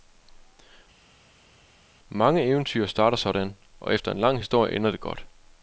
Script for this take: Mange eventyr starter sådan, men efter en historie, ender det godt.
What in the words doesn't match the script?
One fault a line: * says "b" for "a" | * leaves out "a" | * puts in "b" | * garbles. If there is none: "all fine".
* says "og" for "men"
* puts in "lang"